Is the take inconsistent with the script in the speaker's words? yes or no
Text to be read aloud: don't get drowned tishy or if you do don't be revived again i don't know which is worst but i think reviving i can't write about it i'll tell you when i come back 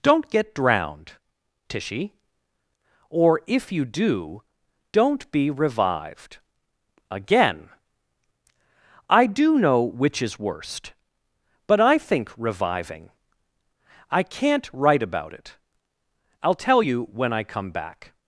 yes